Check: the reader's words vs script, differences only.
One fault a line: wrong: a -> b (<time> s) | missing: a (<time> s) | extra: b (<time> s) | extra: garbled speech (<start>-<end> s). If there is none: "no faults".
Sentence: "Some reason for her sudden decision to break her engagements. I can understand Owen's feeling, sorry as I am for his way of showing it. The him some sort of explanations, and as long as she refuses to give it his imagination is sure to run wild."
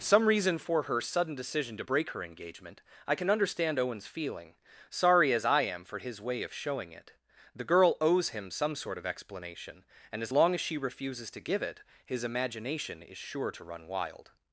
wrong: engagements -> engagement (2.2 s)
extra: girl owes (7.6 s)
wrong: explanations -> explanation (9.1 s)